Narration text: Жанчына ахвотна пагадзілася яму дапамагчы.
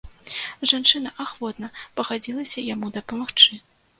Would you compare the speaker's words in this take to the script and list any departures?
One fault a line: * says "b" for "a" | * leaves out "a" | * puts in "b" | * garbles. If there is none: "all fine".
all fine